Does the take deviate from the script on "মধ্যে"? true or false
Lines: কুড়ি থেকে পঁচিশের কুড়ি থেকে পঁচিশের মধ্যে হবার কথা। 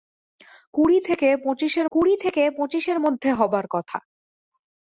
false